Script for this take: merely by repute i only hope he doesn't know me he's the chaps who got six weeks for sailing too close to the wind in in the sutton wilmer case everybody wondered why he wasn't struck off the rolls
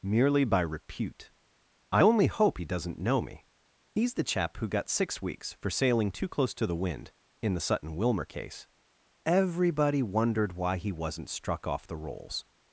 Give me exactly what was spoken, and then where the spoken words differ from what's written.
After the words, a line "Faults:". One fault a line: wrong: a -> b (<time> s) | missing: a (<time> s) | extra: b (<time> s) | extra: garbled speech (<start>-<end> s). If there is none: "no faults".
merely by repute i only hope he doesn't know me he's the chap who got six weeks for sailing too close to the wind in the sutton wilmer case everybody wondered why he wasn't struck off the rolls
Faults:
wrong: chaps -> chap (4.2 s)
missing: in (7.5 s)